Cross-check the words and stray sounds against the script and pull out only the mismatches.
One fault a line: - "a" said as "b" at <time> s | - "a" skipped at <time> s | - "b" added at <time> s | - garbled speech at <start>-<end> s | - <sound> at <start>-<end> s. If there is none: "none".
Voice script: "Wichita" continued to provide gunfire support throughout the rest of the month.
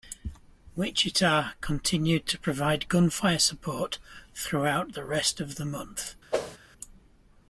- whoosh at 6.3-6.6 s